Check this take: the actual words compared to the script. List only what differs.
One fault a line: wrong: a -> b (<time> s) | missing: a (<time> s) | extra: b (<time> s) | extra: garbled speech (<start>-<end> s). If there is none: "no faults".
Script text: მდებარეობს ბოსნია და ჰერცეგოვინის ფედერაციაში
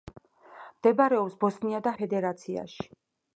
missing: ჰერცეგოვინის (1.9 s)